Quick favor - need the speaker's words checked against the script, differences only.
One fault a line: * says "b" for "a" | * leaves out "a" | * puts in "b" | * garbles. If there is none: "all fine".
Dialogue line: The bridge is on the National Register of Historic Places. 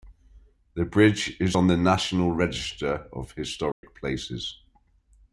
all fine